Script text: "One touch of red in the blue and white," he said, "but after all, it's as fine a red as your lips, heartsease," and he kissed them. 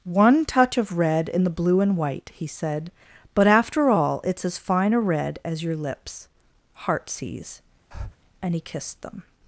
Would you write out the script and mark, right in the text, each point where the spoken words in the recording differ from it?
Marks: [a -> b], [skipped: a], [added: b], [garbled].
"One touch of red in the blue and white," he said, "but after all, it's as fine a red as your lips, heartsease," and he kissed them.